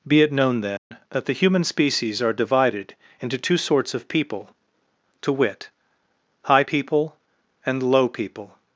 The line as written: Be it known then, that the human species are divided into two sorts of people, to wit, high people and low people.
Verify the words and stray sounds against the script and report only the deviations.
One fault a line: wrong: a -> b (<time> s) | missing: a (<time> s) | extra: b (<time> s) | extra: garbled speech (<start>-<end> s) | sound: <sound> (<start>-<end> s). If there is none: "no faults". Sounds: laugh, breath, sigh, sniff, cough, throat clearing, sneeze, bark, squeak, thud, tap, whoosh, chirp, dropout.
sound: dropout (0.8-0.9 s)